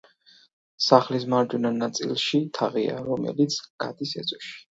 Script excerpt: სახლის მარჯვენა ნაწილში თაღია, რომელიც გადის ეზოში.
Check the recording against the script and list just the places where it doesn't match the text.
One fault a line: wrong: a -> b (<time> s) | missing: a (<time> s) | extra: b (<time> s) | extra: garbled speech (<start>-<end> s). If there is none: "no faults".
no faults